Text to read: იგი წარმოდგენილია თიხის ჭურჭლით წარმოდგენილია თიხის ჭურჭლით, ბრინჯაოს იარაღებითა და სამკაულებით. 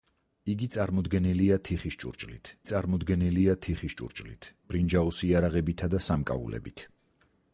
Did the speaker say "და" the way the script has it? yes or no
yes